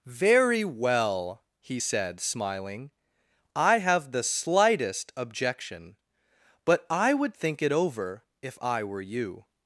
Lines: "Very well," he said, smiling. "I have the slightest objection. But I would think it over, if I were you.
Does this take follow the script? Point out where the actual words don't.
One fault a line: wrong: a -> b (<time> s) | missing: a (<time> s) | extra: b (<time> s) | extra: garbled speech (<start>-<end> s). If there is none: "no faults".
no faults